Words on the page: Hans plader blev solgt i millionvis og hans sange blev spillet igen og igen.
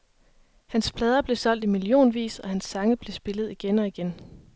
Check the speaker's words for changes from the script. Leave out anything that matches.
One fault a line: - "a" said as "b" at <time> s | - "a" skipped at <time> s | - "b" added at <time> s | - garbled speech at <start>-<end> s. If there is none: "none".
none